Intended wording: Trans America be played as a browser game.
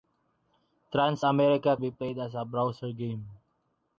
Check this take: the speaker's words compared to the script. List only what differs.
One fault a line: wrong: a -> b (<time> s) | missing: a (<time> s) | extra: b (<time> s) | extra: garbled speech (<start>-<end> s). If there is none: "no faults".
no faults